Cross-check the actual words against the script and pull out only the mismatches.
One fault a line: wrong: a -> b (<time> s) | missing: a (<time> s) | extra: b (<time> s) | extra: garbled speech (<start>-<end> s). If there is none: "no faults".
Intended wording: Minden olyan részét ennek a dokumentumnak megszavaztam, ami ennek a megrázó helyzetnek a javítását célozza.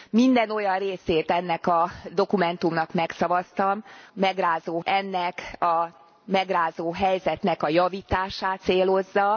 wrong: ami -> megrázó (4.1 s)